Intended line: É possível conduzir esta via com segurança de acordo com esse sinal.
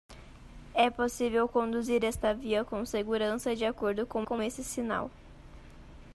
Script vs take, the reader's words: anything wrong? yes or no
yes